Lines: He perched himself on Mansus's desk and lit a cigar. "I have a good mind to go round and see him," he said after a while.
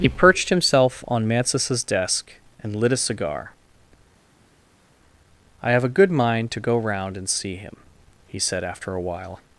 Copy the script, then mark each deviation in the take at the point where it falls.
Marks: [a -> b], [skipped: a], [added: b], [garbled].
He perched himself on Mansus's desk and lit a cigar. "I have a good mind to go round and see him," he said after a while.